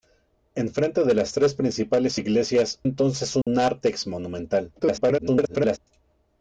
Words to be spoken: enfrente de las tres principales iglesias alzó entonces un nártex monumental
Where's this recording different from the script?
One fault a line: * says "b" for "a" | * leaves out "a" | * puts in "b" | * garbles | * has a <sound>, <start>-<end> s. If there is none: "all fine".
* leaves out "alzó"
* has a dropout, 3.4-3.5 s
* garbles